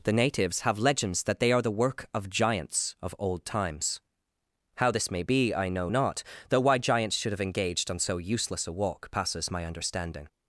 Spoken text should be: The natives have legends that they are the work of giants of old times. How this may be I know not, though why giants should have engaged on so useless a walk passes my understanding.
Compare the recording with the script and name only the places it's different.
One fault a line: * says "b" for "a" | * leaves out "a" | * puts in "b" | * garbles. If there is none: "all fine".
all fine